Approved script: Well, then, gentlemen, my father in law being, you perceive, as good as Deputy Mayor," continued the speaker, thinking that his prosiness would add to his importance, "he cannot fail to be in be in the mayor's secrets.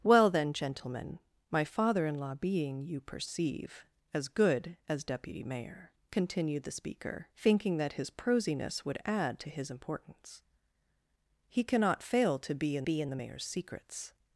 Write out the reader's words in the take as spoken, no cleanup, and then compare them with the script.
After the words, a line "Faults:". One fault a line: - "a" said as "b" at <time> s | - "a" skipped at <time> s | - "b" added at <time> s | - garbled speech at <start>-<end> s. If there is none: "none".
Well, then, gentlemen, my father in law being, you perceive, as good as Deputy Mayor," continued the speaker, thinking that his prosiness would add to his importance, "he cannot fail to be in be in the mayor's secrets.
Faults:
none